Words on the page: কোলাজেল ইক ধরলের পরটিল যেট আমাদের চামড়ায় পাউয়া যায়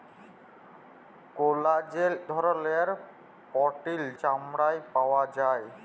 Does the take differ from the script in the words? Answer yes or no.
yes